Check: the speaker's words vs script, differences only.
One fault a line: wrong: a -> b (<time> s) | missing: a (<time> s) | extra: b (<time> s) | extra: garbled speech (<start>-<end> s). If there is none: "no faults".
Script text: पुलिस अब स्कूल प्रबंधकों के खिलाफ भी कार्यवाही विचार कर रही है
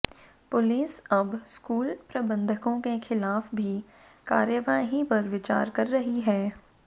extra: पर (5.1 s)